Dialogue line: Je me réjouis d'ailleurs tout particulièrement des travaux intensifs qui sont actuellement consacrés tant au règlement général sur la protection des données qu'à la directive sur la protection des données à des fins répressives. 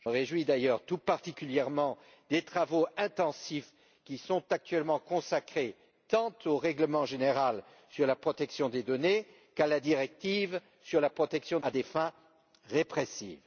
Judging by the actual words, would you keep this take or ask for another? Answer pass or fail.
fail